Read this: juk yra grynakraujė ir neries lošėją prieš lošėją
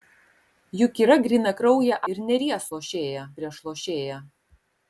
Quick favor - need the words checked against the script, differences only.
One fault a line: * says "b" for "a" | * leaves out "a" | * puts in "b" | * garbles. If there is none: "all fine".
all fine